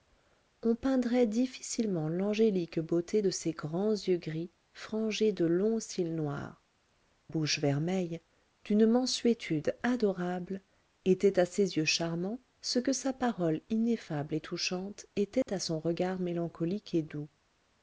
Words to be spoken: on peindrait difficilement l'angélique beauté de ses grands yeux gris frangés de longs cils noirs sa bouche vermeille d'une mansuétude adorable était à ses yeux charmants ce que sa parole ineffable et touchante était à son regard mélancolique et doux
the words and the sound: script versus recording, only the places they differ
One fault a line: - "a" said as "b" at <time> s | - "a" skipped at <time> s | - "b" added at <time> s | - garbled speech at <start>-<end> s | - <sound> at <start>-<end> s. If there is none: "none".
- "sa" skipped at 6.6 s
- dropout at 15.4-15.5 s